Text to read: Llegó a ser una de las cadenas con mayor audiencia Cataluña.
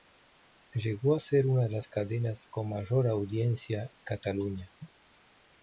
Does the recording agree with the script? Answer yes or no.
yes